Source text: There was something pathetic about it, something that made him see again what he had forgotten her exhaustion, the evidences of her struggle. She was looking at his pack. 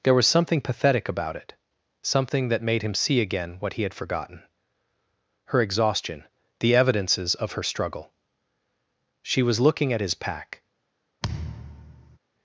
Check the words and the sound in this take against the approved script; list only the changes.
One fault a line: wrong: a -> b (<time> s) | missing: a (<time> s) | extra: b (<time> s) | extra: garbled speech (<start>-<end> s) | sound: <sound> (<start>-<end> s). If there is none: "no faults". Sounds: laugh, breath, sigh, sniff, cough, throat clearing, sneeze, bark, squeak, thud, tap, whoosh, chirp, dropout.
sound: thud (11.2-12.2 s)